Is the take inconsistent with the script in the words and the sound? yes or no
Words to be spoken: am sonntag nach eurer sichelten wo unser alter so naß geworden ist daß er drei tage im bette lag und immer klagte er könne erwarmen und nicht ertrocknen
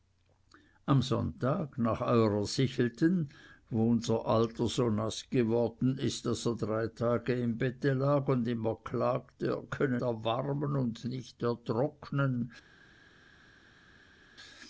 no